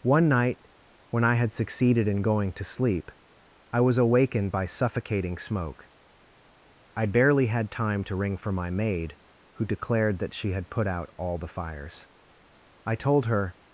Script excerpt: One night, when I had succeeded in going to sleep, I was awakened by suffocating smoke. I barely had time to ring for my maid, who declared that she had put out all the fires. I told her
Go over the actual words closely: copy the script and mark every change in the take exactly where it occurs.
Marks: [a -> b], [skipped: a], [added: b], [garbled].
One night, when I had succeeded in going to sleep, I was awakened by suffocating smoke. I barely had time to ring for my maid, who declared that she had put out all the fires. I told her